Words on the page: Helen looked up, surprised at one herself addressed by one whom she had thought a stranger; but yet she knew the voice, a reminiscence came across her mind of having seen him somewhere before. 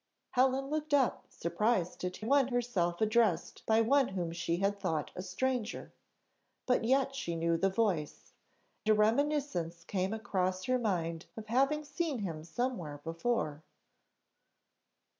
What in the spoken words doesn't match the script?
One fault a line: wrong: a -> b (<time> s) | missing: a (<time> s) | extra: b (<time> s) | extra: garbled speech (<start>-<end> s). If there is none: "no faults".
no faults